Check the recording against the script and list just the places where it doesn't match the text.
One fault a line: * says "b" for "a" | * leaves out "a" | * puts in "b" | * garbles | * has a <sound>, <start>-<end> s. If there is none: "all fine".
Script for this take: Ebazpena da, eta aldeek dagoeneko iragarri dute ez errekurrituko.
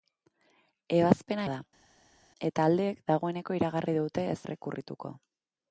all fine